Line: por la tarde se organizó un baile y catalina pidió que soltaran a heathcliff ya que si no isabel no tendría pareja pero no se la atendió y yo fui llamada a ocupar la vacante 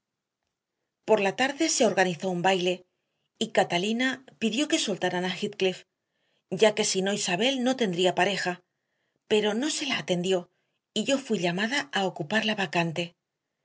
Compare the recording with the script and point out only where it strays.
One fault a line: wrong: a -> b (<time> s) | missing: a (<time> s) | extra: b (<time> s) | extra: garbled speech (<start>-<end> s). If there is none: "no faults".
no faults